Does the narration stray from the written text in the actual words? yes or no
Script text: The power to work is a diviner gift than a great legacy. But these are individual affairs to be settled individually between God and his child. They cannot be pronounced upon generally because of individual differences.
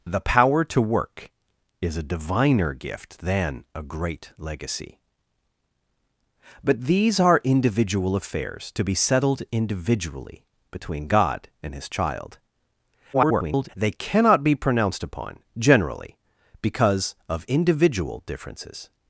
yes